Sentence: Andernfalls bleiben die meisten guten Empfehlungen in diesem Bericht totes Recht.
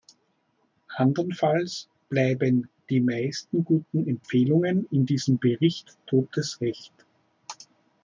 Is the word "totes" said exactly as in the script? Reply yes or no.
yes